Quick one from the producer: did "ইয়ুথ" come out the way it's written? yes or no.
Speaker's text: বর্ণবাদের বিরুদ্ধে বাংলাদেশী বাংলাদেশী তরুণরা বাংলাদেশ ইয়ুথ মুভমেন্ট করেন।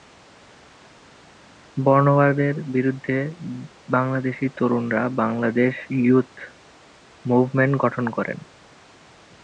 yes